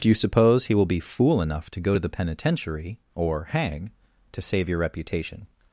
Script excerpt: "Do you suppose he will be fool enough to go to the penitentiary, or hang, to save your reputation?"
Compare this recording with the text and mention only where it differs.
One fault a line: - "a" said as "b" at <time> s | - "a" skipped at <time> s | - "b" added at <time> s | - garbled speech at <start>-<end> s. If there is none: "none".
none